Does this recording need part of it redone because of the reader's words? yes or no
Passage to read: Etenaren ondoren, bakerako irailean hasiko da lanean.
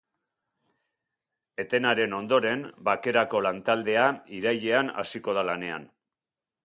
yes